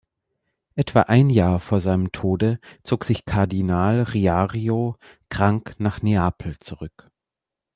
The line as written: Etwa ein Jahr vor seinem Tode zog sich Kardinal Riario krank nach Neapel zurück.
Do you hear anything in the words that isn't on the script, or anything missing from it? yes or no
no